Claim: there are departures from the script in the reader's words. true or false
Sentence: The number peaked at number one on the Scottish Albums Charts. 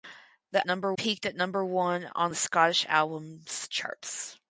false